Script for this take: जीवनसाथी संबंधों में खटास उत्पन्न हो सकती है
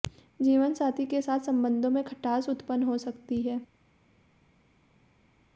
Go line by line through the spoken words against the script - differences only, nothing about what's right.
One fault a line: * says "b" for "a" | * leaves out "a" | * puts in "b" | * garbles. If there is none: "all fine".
* puts in "के साथ"